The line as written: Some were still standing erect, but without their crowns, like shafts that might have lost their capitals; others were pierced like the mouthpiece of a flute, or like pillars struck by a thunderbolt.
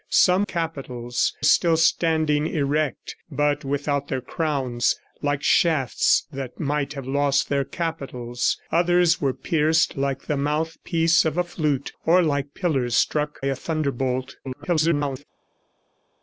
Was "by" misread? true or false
true